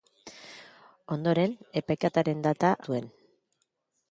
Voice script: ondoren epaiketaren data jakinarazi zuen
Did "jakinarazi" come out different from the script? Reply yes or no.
yes